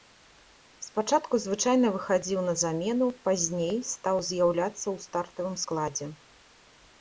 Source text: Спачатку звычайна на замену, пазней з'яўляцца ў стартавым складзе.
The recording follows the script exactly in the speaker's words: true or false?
false